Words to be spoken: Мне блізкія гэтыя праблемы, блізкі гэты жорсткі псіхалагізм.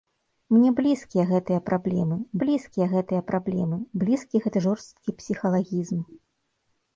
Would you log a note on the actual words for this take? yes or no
yes